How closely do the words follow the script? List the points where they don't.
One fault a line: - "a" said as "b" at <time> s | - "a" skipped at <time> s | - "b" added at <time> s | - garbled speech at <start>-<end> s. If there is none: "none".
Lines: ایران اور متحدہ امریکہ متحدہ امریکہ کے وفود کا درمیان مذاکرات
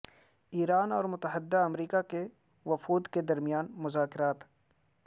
- "متحدہ امریکہ" skipped at 2.0 s
- "کا" said as "کے" at 3.1 s